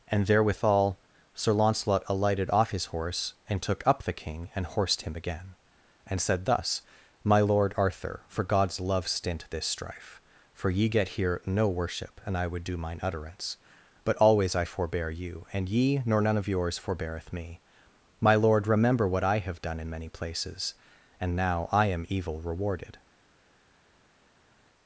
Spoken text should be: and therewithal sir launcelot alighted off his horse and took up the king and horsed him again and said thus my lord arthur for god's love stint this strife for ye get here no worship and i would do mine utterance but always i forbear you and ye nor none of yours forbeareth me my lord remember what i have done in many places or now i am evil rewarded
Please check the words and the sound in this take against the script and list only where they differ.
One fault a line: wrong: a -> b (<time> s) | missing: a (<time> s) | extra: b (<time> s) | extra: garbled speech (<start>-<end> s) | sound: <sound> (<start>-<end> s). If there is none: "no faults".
wrong: or -> and (21.2 s)